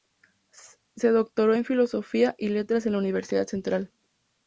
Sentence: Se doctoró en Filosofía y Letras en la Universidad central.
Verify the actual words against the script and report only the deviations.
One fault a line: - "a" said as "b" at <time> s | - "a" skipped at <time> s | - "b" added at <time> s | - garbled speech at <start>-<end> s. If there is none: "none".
none